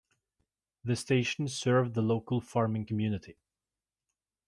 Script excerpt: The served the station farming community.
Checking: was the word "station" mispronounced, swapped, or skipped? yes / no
yes